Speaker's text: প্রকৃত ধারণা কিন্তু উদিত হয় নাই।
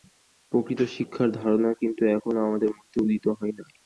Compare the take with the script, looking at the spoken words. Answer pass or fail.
fail